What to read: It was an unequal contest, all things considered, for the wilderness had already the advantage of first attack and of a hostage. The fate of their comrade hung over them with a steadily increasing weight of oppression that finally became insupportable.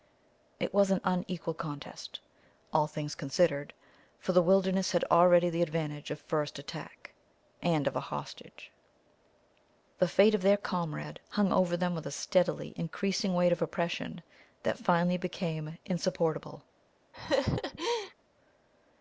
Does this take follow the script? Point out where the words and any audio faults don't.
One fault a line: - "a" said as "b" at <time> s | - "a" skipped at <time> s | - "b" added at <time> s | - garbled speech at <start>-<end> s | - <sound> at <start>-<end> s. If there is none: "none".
- laugh at 17.1-18.1 s